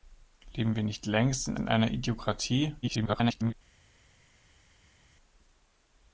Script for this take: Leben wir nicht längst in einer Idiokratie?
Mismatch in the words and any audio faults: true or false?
true